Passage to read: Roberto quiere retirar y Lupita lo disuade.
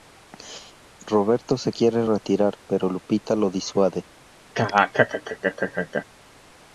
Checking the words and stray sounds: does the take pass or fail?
fail